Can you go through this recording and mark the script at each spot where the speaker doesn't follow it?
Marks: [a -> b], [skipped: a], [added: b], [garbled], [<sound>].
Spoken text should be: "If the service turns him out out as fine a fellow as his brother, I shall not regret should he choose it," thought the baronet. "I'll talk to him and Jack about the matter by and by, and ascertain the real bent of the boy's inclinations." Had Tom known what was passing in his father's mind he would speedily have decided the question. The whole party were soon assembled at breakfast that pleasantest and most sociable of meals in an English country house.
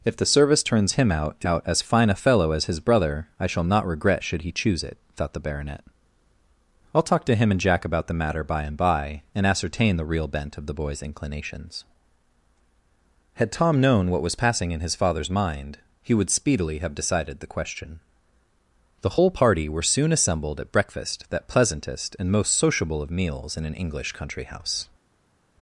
"If the service turns him out out as fine a fellow as his brother, I shall not regret should he choose it," thought the baronet. "I'll talk to him and Jack about the matter by and by, and ascertain the real bent of the boy's inclinations." Had Tom known what was passing in his father's mind he would speedily have decided the question. The whole party were soon assembled at breakfast that pleasantest and most sociable of meals in an English country house.